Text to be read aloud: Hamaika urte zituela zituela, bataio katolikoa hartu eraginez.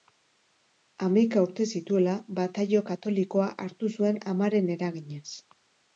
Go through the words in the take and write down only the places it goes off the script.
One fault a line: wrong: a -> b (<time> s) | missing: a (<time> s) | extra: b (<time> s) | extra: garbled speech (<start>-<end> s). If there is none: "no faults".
missing: zituela (2.1 s)
extra: zuen amaren (4.0 s)